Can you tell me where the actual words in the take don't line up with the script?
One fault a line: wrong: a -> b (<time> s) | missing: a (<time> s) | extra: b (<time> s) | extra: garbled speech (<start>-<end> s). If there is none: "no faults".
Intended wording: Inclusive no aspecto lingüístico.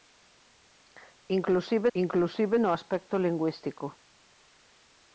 extra: inclusive (1.9 s)